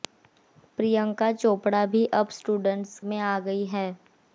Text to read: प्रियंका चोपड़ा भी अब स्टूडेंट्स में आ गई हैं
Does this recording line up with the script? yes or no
yes